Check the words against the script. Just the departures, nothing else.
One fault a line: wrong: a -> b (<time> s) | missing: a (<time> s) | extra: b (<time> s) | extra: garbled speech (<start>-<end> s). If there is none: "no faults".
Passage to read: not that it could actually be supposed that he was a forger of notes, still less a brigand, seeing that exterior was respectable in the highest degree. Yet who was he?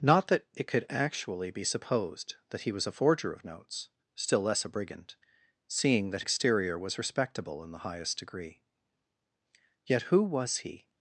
no faults